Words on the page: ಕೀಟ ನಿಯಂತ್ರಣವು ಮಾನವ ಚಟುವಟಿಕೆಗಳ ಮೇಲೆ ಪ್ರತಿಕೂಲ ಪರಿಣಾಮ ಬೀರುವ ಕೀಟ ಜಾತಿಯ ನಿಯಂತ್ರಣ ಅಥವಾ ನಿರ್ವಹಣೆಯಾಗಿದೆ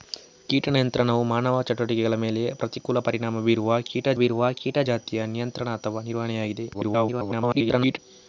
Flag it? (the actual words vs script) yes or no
yes